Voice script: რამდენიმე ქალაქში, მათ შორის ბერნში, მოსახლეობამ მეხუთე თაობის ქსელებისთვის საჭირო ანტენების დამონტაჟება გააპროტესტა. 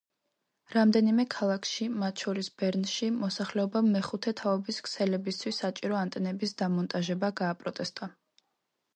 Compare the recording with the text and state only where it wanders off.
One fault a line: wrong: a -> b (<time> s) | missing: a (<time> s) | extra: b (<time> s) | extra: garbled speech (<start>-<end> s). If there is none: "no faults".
no faults